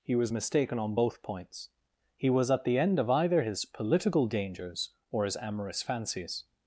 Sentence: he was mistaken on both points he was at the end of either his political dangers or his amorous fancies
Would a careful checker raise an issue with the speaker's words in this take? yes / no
no